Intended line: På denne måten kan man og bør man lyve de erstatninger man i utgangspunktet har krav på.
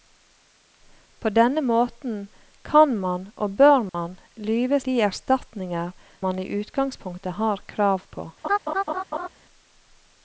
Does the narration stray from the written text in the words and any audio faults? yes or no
yes